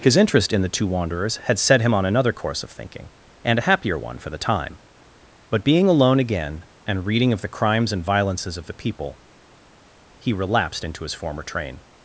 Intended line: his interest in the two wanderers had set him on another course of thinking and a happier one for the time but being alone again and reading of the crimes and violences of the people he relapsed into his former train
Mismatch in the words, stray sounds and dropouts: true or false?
false